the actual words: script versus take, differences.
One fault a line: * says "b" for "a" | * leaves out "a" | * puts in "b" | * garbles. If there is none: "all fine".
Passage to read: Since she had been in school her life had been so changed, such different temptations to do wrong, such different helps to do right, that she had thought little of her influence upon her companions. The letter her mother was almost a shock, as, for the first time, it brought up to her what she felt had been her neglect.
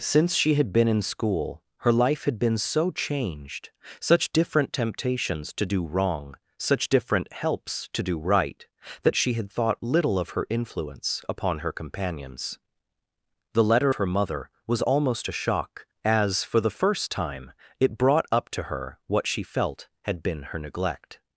all fine